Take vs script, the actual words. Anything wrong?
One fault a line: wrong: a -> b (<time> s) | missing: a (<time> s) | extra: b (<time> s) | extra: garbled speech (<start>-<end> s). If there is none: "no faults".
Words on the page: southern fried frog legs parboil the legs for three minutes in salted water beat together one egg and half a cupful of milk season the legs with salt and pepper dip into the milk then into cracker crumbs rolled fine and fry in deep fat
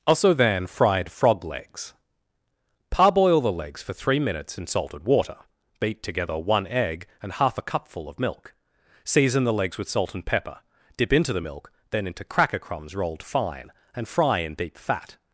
wrong: southern -> also then (0.1 s)